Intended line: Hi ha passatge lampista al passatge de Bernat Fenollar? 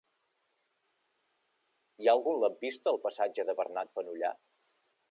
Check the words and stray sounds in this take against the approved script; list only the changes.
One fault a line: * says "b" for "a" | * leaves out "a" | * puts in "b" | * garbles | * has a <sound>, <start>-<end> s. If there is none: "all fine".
* says "algun" for "passatge"